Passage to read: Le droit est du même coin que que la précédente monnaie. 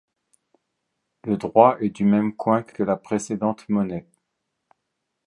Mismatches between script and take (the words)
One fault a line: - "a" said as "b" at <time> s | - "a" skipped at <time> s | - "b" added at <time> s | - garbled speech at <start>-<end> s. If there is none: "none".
none